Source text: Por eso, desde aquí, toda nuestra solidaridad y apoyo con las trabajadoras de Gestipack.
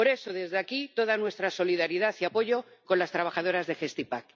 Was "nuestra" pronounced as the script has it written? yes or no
yes